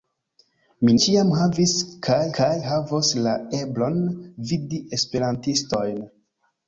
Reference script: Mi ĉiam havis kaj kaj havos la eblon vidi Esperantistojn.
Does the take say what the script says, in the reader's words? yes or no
yes